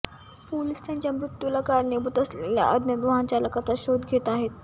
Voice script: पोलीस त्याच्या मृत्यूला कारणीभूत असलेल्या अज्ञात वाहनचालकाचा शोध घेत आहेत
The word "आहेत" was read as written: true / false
true